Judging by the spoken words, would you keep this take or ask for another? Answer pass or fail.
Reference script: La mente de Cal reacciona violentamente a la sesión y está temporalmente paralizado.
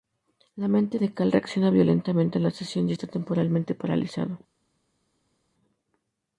pass